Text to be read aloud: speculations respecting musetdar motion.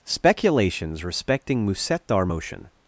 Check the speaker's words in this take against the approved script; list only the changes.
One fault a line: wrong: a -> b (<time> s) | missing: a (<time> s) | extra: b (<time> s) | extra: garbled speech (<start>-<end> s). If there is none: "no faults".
no faults